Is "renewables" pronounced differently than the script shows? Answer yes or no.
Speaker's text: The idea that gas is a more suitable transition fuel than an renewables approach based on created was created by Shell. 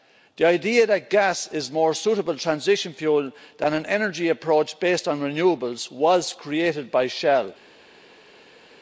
yes